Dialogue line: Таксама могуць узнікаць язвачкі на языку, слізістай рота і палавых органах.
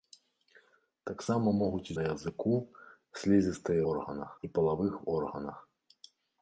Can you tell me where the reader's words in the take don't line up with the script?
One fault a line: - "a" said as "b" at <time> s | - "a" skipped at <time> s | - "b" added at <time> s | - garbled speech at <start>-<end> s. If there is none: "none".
- "узнікаць язвачкі" skipped at 1.9 s
- "рота" said as "органах" at 3.9 s